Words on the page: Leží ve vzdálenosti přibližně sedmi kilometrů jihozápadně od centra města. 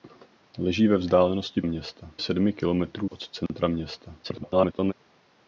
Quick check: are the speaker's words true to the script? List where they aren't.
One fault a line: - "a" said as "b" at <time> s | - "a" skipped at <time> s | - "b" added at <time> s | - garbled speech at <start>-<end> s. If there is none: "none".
- "přibližně" said as "města" at 1.6 s
- "jihozápadně" skipped at 3.1 s
- garbled speech at 4.2-4.9 s